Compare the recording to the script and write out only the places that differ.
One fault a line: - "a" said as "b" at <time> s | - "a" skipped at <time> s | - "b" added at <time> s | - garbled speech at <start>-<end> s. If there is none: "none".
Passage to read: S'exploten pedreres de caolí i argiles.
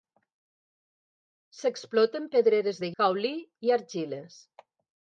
none